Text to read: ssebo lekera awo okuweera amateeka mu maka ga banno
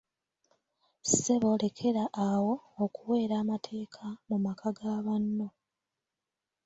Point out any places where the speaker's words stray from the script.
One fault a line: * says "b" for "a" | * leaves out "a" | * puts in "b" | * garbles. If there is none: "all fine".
all fine